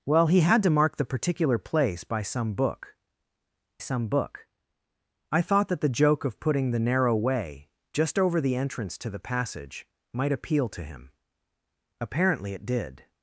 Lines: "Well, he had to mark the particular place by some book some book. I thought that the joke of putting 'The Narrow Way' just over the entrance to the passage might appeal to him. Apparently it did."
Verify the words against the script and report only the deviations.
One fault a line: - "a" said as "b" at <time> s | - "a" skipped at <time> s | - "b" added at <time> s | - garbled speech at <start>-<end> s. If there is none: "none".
none